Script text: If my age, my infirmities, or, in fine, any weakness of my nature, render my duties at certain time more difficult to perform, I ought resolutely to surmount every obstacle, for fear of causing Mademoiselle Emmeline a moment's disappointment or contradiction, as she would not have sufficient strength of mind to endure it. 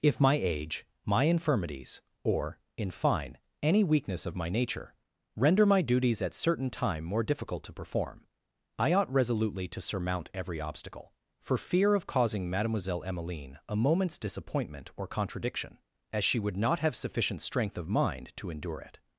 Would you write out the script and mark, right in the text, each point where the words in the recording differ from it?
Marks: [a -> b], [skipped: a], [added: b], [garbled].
If my age, my infirmities, or, in fine, any weakness of my nature, render my duties at certain time more difficult to perform, I ought resolutely to surmount every obstacle, for fear of causing Mademoiselle Emmeline a moment's disappointment or contradiction, as she would not have sufficient strength of mind to endure it.